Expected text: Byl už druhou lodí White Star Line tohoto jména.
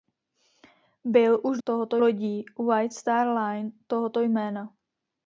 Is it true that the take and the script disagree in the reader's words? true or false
true